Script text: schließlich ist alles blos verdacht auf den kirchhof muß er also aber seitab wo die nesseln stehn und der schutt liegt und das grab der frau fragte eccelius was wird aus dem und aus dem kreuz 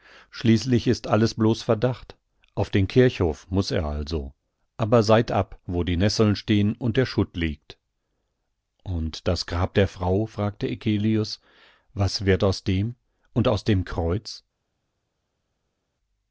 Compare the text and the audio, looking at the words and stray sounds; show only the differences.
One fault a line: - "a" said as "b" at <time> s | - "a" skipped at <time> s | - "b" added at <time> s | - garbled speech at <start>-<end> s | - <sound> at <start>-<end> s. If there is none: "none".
none